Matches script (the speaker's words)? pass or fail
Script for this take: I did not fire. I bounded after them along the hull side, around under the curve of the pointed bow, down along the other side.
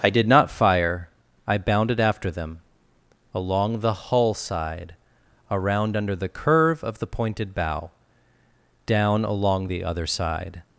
pass